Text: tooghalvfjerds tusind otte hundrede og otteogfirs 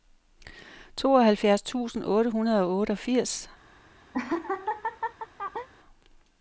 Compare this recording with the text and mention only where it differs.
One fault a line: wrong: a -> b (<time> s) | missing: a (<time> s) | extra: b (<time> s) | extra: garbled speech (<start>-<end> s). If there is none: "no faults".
no faults